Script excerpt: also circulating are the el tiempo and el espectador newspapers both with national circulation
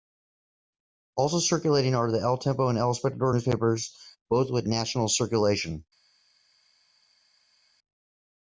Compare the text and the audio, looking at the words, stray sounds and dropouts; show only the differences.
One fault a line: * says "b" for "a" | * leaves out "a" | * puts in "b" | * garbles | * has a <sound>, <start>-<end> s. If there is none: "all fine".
all fine